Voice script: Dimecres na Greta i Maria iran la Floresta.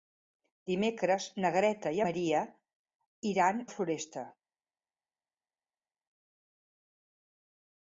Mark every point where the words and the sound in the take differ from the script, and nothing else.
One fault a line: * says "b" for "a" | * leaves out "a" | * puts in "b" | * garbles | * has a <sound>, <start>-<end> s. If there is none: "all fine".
all fine